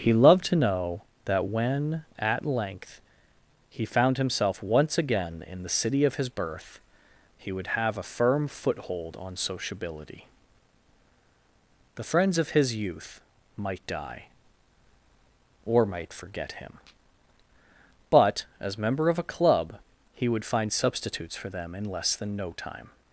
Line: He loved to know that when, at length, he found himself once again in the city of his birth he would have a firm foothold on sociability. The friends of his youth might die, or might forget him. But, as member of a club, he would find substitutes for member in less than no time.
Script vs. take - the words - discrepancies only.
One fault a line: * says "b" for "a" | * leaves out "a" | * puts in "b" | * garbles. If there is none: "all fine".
* says "them" for "member"